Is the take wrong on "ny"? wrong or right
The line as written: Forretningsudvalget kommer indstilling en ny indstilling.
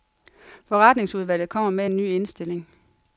right